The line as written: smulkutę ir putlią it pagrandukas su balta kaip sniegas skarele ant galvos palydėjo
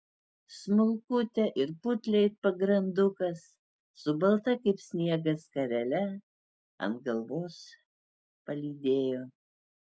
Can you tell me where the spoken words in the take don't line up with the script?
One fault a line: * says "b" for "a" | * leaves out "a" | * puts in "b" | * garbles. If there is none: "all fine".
all fine